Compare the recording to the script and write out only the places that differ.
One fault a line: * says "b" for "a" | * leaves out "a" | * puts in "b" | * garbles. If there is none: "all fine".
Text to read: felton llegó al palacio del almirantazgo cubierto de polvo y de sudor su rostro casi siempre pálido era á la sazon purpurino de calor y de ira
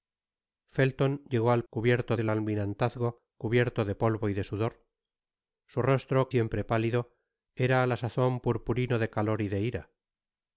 * says "cubierto" for "palacio"
* leaves out "casi"